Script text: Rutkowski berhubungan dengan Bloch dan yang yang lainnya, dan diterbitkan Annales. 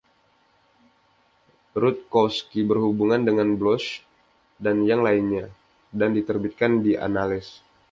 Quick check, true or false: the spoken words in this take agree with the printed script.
false